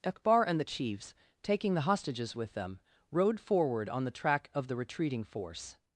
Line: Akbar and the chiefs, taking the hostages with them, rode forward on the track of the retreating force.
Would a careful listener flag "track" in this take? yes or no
no